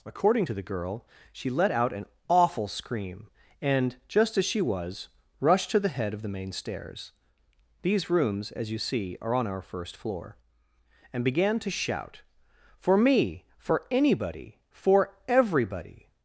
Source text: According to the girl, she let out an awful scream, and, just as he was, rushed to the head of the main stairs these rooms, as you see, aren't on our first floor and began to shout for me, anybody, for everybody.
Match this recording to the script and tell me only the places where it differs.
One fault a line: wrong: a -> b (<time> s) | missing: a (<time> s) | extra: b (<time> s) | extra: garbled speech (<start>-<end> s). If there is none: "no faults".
wrong: he -> she (4.4 s)
wrong: aren't -> are (9.2 s)
extra: for (13.6 s)